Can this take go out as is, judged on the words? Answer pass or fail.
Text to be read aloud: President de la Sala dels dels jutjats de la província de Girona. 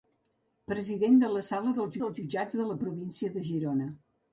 pass